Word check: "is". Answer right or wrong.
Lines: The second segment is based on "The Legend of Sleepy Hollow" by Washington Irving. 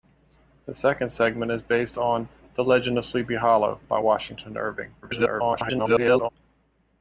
right